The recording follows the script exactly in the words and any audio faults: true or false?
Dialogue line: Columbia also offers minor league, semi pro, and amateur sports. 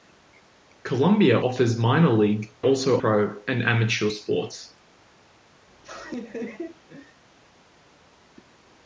false